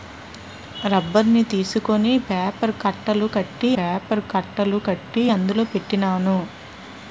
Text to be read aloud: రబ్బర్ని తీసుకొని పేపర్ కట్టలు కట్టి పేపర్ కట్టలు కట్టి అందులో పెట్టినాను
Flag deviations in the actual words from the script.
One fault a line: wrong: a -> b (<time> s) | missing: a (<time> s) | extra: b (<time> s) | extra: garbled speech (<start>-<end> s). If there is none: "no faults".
no faults